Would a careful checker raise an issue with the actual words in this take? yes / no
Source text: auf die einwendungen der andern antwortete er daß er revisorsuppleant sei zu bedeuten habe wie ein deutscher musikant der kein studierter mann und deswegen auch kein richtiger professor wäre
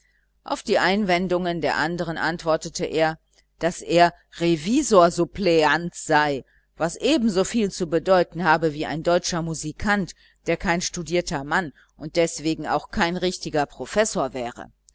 yes